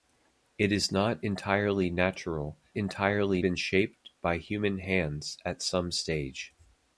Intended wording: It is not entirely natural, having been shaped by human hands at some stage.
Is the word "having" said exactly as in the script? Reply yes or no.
no